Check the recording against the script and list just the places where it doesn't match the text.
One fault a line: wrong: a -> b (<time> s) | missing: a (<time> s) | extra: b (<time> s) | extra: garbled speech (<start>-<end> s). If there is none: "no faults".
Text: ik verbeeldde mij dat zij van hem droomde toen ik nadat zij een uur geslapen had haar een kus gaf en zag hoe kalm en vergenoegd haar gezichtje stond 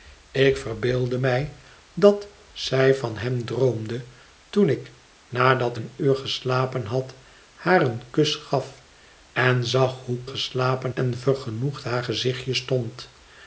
missing: zij (5.8 s)
wrong: kalm -> geslapen (10.2 s)